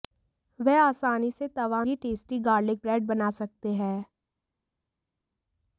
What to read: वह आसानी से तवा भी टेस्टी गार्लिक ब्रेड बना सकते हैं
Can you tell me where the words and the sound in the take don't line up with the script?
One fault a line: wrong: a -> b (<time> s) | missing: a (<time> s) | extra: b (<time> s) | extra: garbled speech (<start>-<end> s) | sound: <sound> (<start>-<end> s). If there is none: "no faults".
no faults